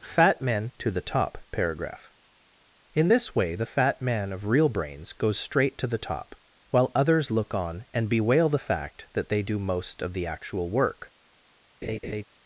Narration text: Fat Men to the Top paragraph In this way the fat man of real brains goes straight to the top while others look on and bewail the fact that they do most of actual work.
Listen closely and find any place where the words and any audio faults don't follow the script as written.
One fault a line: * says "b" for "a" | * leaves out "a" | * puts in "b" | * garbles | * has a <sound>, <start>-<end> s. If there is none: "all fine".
* puts in "the"
* has a laugh, 11.8-12.2 s